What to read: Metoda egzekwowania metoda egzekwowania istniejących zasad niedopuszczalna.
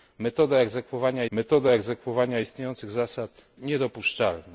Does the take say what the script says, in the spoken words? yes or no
yes